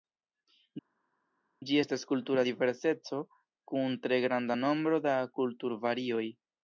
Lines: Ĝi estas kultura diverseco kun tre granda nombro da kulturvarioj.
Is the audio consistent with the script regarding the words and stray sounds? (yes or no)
yes